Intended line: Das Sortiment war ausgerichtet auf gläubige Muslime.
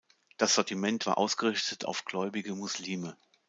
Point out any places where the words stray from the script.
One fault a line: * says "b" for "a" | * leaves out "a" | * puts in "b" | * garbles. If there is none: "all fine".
all fine